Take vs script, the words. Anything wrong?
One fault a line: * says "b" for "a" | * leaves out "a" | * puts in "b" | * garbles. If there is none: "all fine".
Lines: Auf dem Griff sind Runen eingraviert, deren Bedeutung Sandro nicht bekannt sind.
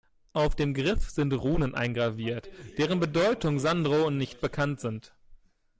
all fine